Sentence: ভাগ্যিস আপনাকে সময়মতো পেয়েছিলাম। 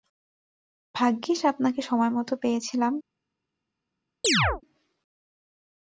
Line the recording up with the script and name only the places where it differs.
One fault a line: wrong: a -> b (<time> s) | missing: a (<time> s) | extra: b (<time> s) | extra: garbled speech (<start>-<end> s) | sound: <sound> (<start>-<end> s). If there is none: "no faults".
sound: chirp (4.2-4.6 s)